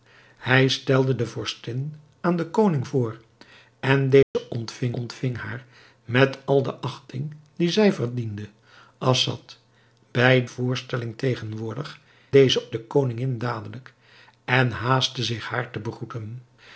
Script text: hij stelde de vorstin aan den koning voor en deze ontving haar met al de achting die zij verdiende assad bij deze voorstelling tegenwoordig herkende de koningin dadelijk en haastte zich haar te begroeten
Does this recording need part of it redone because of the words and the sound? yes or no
yes